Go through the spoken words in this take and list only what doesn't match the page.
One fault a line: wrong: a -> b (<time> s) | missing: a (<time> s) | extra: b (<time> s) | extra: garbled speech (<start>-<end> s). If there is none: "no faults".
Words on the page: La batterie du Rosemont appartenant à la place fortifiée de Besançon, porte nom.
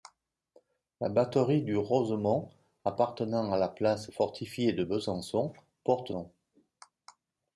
no faults